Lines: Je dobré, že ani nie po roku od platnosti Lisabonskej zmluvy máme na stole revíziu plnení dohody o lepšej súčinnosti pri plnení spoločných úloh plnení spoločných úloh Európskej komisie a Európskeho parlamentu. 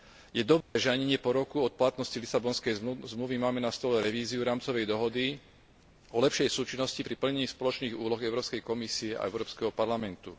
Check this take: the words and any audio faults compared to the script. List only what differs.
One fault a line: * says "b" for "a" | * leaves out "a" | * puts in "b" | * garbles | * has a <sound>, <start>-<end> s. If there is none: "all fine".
* has a dropout, 0.6-0.8 s
* says "rámcovej" for "plnení"
* leaves out "plnení spoločných úloh"